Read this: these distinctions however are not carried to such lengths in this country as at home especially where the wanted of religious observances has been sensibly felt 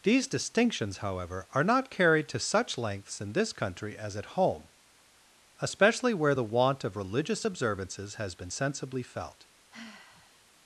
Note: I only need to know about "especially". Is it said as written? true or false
true